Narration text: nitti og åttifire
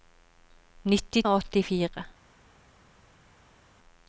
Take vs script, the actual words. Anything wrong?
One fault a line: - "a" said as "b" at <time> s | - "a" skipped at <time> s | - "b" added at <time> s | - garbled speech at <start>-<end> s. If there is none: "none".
none